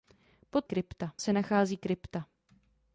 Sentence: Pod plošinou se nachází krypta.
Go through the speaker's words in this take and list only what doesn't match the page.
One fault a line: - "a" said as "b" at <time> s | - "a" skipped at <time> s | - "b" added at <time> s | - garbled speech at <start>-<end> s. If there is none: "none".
- "plošinou" said as "krypta" at 0.6 s